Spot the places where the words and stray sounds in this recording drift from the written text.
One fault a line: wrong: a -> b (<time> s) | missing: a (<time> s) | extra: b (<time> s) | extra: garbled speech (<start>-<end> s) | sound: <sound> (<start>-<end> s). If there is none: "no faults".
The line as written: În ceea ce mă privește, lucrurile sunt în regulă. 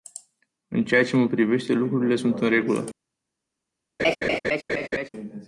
sound: laugh (4.0-5.1 s)